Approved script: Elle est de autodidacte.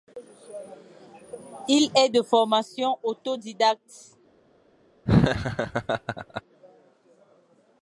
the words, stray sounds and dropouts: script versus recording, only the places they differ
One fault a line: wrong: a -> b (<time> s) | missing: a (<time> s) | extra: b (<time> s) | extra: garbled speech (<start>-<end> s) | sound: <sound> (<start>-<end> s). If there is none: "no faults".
wrong: Elle -> Il (1.7 s)
extra: formation (2.2 s)
sound: laugh (5.1-6.4 s)